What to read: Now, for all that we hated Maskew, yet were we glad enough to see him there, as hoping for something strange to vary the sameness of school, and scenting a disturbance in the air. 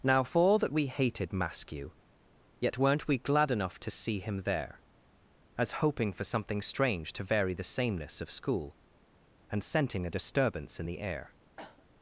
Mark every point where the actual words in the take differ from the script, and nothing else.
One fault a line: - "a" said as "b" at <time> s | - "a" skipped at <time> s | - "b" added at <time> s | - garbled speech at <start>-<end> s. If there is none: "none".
- "were" said as "weren't" at 2.8 s